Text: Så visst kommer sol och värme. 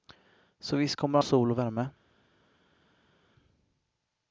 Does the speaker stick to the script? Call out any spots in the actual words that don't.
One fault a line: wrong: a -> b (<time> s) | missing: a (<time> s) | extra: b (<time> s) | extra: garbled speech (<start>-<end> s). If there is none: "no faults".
no faults